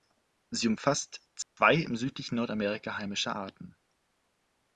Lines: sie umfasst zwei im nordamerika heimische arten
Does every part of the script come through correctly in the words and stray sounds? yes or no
no